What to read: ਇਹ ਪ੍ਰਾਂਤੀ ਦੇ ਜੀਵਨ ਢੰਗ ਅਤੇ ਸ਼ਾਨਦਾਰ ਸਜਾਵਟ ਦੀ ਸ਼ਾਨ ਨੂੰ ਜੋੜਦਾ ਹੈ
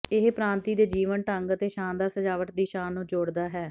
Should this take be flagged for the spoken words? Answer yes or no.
no